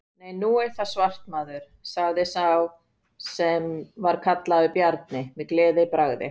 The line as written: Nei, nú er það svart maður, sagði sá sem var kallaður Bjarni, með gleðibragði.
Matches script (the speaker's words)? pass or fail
pass